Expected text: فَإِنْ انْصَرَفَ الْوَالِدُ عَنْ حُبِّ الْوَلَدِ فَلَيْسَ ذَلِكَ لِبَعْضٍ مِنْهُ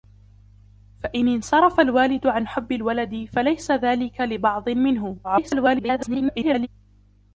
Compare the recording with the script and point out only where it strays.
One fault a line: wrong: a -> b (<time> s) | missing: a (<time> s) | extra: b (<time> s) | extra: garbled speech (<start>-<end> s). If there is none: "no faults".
extra: garbled speech (5.2-6.7 s)